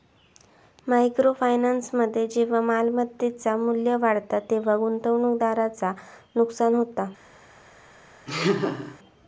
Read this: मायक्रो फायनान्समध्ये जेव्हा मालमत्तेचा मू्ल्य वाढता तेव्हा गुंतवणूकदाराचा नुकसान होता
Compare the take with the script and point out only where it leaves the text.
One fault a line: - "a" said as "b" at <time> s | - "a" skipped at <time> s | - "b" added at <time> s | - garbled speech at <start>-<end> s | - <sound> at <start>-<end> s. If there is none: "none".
- laugh at 8.3-9.0 s